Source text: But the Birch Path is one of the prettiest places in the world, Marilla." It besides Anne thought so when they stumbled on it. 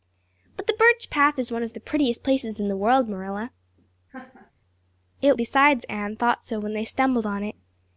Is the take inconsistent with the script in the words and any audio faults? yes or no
yes